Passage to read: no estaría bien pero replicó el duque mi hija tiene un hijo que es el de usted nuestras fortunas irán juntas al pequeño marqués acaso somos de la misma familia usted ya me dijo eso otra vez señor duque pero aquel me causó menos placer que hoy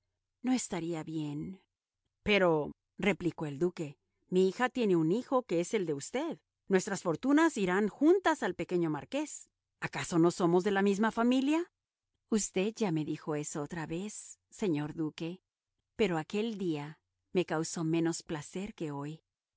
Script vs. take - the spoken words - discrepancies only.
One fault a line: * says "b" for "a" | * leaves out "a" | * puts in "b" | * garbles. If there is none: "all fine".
* puts in "no"
* puts in "día"